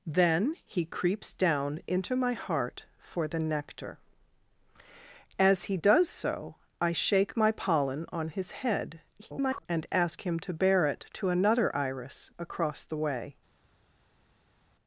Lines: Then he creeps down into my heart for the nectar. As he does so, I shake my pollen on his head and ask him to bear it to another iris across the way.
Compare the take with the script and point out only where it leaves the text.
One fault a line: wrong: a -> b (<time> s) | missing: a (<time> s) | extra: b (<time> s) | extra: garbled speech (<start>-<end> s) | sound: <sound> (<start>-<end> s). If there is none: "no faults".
extra: garbled speech (9.2-9.7 s)